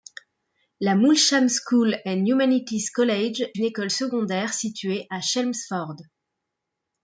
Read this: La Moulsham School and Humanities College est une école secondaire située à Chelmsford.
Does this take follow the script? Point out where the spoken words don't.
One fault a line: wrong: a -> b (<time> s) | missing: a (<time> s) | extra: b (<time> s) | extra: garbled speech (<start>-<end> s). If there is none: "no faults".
missing: est (3.4 s)